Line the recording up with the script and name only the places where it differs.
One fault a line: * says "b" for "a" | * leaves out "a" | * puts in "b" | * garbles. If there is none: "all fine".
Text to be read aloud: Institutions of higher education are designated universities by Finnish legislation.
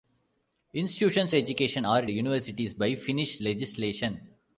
* leaves out "of higher"
* leaves out "designated"